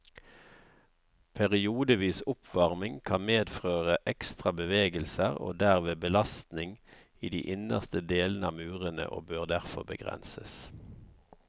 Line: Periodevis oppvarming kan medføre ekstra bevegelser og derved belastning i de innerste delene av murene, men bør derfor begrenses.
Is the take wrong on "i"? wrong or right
right